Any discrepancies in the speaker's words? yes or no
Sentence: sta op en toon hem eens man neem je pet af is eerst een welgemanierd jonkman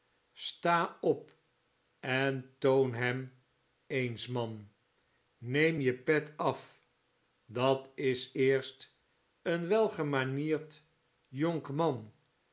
yes